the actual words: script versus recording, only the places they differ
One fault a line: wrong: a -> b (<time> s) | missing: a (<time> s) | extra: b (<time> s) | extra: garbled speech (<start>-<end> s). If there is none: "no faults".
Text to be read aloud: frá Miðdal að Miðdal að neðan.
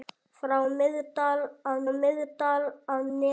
no faults